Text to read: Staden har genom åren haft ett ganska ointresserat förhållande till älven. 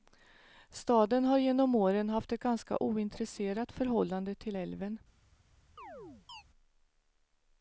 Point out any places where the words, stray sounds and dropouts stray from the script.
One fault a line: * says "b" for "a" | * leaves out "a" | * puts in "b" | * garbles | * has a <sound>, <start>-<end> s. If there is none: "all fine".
* has a chirp, 5.8-6.4 s